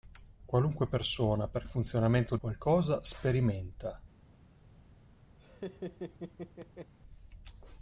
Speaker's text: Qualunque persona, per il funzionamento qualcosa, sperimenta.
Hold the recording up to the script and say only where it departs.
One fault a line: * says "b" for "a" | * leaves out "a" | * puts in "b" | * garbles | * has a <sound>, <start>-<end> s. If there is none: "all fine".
* has a laugh, 5.4-6.9 s